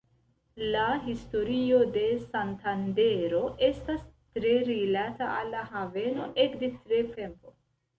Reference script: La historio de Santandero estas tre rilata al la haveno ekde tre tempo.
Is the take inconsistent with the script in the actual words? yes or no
no